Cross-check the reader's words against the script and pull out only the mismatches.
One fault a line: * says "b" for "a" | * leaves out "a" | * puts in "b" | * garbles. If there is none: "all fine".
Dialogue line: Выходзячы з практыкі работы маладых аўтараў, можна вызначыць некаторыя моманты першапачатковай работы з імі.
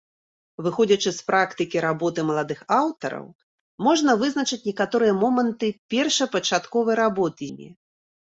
* leaves out "з"